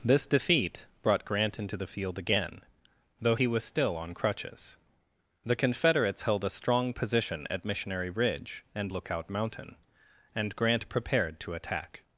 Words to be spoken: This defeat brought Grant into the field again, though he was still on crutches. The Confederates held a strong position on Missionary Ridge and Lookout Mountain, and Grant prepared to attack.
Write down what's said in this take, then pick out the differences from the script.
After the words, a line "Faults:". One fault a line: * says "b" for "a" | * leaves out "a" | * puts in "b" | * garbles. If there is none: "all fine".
This defeat brought Grant into the field again, though he was still on crutches. The Confederates held a strong position at Missionary Ridge and Lookout Mountain, and Grant prepared to attack.
Faults:
* says "at" for "on"